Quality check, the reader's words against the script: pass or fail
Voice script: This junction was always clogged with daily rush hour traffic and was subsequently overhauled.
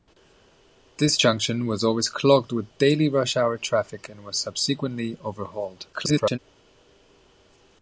fail